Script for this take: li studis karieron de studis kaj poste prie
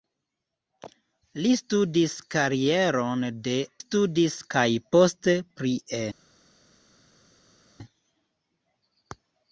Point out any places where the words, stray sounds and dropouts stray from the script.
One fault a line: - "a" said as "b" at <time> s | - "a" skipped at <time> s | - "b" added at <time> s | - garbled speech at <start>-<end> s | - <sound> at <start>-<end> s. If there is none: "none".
none